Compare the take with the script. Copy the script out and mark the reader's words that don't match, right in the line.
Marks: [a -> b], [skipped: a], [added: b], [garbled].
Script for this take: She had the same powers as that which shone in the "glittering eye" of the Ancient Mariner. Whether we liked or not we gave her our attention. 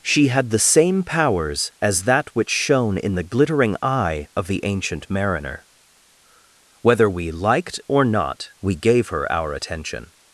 She had the same powers as that which shone in the "glittering eye" of the Ancient Mariner. Whether we liked or not we gave her our attention.